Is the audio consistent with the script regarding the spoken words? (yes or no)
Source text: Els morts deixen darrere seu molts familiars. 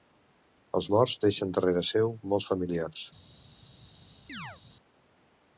yes